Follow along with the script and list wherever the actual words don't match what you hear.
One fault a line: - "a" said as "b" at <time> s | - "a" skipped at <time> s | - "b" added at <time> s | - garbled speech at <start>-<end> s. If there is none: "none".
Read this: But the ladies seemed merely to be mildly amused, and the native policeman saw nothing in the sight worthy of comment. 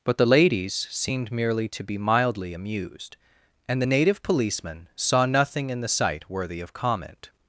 none